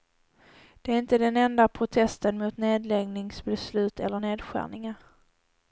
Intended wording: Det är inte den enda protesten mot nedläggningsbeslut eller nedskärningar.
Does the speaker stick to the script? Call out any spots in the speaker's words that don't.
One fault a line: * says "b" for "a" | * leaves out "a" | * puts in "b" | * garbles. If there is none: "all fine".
all fine